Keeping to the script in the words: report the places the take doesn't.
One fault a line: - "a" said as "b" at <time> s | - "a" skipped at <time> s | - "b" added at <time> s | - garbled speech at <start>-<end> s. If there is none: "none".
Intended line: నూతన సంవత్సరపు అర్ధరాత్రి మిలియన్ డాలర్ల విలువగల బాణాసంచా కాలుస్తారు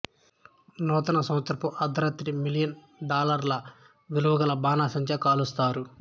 none